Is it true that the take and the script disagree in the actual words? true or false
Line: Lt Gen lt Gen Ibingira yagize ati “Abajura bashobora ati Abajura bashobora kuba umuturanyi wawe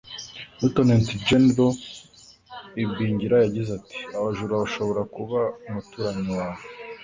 true